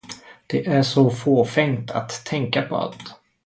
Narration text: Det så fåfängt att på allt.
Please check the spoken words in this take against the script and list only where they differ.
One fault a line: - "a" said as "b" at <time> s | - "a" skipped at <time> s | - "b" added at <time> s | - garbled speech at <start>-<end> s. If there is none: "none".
- "är" added at 0.7 s
- "tänka" added at 2.2 s